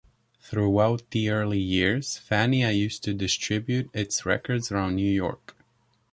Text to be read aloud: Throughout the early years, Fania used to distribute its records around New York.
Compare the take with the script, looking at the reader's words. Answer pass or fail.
pass